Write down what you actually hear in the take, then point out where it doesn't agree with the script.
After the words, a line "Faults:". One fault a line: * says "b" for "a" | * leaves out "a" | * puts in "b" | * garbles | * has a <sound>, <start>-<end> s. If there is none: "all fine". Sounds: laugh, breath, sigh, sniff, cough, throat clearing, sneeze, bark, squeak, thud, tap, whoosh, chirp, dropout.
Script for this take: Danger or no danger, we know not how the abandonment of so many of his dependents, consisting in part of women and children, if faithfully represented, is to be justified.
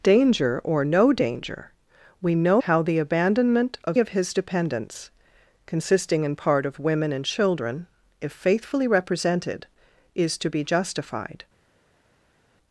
Danger or no danger, we know how the abandonment of of his dependents, consisting in part of women and children, if faithfully represented, is to be justified.
Faults:
* leaves out "not"
* leaves out "so many"